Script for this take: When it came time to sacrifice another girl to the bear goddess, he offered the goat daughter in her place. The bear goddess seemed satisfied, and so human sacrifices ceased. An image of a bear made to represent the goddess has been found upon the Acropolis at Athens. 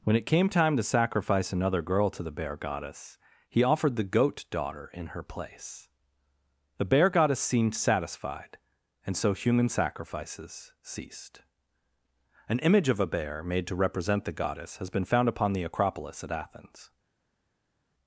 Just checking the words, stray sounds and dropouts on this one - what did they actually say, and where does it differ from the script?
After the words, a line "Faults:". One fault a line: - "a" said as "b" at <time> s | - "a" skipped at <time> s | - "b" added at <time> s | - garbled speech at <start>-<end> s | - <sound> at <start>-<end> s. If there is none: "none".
When it came time to sacrifice another girl to the bear goddess, he offered the goat daughter in her place. The bear goddess seemed satisfied, and so human sacrifices ceased. An image of a bear made to represent the goddess has been found upon the Acropolis at Athens.
Faults:
none